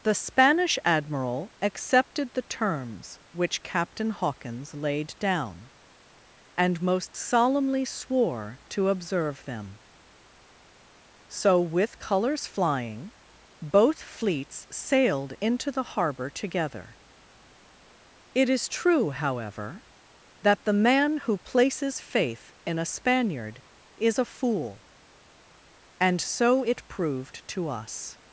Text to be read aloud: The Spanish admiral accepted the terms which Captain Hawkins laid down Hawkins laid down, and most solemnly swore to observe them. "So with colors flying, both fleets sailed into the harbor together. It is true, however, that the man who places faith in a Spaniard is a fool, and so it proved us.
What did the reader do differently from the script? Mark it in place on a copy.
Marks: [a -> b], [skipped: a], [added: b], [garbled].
The Spanish admiral accepted the terms which Captain Hawkins laid down [skipped: Hawkins laid down,] and most solemnly swore to observe them. "So with colors flying, both fleets sailed into the harbor together. It is true, however, that the man who places faith in a Spaniard is a fool, and so it proved [added: to] us.